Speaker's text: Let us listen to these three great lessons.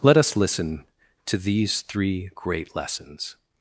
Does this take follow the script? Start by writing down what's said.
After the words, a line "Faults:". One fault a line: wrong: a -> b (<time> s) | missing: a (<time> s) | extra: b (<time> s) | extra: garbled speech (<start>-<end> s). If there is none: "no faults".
Let us listen to these three great lessons.
Faults:
no faults